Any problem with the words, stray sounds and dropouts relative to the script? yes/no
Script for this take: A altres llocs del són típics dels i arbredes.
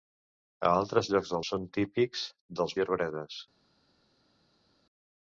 no